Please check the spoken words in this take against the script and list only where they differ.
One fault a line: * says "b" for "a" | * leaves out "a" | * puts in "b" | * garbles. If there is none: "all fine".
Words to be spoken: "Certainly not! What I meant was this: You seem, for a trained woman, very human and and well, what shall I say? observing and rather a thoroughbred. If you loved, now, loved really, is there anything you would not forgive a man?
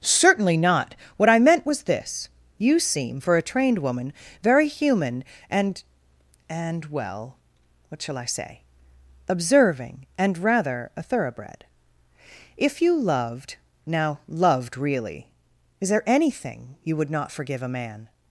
all fine